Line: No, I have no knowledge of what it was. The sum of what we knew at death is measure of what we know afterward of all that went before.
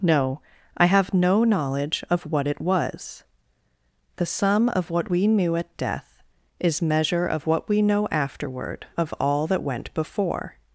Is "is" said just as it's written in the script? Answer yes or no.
yes